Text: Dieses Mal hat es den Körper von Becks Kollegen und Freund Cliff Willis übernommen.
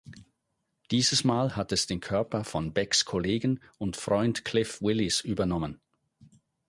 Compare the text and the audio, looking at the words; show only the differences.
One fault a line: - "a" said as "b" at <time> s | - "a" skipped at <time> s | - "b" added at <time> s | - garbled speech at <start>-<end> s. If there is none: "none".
none